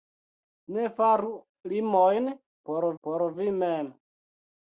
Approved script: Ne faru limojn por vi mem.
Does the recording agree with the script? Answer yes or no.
no